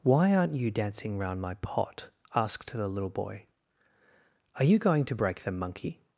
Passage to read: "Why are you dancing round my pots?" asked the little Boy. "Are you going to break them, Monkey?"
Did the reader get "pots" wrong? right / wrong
wrong